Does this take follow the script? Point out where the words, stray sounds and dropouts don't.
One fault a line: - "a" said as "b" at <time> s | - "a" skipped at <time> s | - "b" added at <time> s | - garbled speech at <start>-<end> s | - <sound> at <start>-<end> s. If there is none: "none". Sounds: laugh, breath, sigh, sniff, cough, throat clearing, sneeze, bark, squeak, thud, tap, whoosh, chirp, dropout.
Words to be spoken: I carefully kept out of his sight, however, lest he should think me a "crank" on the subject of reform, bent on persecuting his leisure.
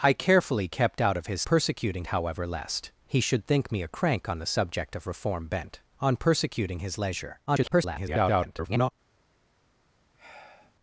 - "sight" said as "persecuting" at 1.4 s
- garbled speech at 7.5-8.9 s
- sigh at 10.1-10.8 s